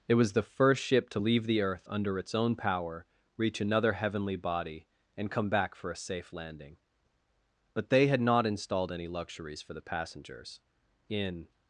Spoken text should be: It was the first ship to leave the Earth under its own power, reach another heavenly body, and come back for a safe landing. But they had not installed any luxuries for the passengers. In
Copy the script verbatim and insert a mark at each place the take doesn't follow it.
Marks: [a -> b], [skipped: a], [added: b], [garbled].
It was the first ship to leave the Earth under its own power, reach another heavenly body, and come back for a safe landing. But they had not installed any luxuries for the passengers. In